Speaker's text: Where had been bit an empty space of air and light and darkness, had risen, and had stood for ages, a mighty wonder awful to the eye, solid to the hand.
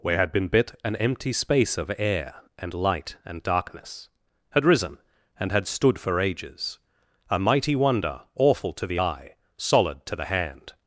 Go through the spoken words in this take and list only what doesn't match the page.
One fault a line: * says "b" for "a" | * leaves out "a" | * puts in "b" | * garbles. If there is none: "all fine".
all fine